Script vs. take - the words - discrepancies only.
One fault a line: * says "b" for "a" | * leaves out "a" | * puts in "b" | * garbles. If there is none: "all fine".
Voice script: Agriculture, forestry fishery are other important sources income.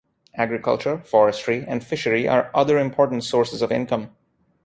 * puts in "and"
* puts in "of"